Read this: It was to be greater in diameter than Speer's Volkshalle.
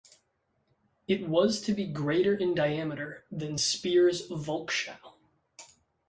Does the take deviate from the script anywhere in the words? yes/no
no